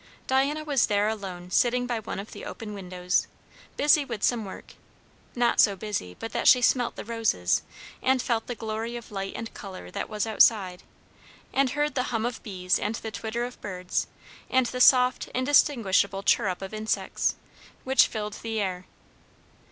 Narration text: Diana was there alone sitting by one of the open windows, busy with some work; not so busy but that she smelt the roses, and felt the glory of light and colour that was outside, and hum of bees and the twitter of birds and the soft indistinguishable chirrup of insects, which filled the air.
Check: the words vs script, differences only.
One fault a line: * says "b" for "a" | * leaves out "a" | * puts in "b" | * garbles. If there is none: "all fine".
* puts in "heard the"